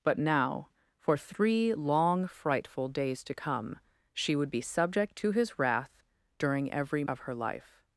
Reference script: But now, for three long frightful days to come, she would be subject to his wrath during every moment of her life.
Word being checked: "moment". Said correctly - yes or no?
no